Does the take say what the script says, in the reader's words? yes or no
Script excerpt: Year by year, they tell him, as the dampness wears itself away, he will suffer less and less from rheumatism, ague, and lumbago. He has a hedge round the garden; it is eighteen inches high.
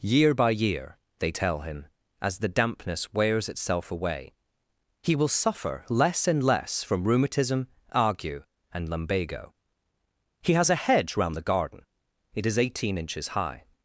yes